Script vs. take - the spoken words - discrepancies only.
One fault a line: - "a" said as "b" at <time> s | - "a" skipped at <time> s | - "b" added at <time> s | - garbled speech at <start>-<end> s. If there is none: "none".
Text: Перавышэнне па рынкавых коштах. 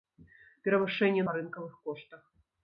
none